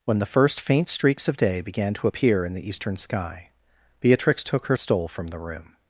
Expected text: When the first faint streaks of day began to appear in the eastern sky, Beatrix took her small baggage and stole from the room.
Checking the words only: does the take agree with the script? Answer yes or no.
no